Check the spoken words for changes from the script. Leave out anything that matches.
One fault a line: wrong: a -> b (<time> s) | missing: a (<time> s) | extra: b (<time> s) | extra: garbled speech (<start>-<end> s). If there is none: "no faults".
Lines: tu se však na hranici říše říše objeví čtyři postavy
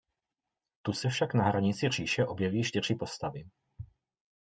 missing: říše (2.2 s)